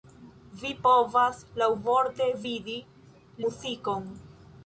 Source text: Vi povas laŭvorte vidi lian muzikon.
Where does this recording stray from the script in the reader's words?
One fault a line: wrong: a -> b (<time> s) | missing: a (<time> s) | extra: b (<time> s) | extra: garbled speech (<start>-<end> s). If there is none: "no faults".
missing: lian (2.8 s)